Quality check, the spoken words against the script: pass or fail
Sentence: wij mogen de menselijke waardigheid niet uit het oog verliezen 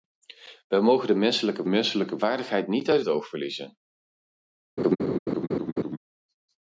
fail